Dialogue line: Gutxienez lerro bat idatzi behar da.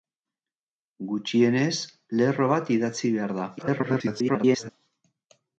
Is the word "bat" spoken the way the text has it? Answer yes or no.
yes